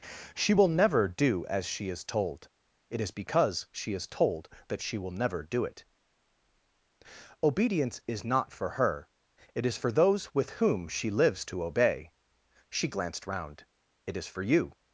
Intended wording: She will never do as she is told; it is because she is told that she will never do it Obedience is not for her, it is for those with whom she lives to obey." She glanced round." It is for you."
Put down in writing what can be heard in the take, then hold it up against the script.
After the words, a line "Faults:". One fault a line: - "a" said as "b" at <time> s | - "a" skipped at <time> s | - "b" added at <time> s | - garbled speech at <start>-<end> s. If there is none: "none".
She will never do as she is told; it is because she is told that she will never do it Obedience is not for her, it is for those with whom she lives to obey." She glanced round." It is for you."
Faults:
none